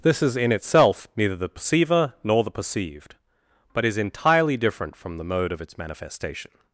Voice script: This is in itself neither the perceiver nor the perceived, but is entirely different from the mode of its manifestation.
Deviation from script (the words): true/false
false